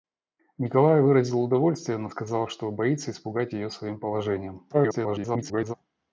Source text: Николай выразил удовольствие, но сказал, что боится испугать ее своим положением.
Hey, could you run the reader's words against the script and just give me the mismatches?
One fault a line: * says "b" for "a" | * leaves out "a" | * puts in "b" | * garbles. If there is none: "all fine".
* garbles